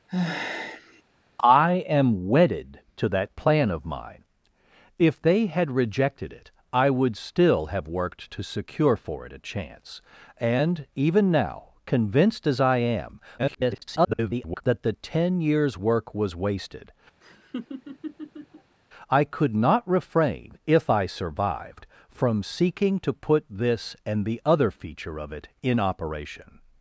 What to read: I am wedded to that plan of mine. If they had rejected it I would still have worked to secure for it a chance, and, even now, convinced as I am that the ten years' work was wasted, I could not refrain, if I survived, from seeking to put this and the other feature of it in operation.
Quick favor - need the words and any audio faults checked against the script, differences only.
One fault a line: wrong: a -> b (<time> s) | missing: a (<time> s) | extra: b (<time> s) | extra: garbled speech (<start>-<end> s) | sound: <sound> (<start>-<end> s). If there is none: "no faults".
sound: sigh (0.1-1.0 s)
extra: garbled speech (13.4-14.6 s)
sound: laugh (17.2-18.8 s)